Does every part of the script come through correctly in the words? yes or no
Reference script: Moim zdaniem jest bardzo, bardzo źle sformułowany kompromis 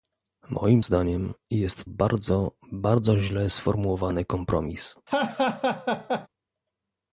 yes